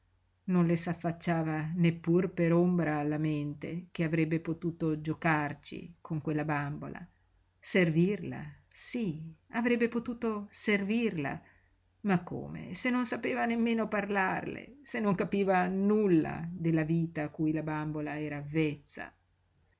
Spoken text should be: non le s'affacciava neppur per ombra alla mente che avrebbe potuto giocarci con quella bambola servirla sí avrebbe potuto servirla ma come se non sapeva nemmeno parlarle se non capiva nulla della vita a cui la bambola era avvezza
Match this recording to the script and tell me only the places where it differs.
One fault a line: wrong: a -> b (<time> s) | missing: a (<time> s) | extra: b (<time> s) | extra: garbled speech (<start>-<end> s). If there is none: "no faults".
no faults